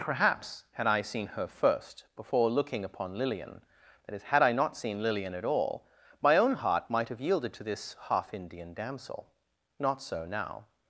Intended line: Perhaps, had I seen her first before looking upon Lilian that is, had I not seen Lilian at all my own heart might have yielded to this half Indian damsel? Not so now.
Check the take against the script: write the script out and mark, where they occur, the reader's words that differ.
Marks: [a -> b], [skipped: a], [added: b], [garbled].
Perhaps, had I seen her first before looking upon Lilian that is, had I not seen Lilian at all my own heart might have yielded to this half Indian damsel? Not so now.